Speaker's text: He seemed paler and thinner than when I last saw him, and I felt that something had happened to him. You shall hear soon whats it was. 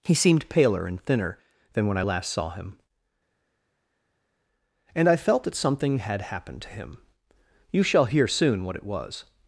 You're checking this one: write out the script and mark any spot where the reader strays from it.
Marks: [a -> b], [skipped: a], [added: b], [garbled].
He seemed paler and thinner than when I last saw him, and I felt that something had happened to him. You shall hear soon [whats -> what] it was.